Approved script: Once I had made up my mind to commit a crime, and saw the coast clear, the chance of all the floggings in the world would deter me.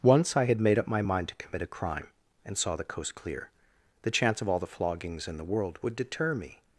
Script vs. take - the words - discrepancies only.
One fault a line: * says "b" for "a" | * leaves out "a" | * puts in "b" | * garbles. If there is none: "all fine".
all fine